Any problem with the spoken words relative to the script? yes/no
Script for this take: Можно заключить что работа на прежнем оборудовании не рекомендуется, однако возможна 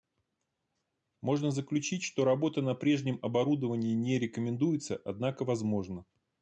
no